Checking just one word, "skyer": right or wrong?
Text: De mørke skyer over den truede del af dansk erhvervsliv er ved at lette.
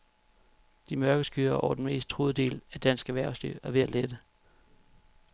right